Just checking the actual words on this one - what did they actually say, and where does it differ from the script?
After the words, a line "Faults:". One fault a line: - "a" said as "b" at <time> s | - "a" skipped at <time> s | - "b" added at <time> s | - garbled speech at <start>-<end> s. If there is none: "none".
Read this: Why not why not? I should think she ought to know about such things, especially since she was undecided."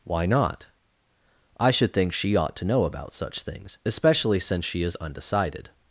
Why not? I should think she ought to know about such things, especially since she is undecided."
Faults:
- "why not" skipped at 0.7 s
- "was" said as "is" at 4.8 s